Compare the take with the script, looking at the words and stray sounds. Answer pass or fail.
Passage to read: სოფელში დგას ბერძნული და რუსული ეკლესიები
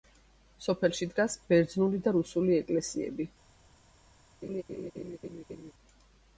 fail